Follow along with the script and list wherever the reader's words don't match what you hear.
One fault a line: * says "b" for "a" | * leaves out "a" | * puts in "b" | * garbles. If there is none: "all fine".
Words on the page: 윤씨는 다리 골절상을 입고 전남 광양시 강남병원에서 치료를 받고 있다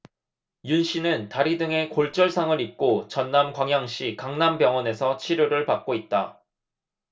* puts in "등에"